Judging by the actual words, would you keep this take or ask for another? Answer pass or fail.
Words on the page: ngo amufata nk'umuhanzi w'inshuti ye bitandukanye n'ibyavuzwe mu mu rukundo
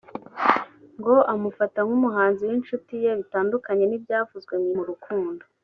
pass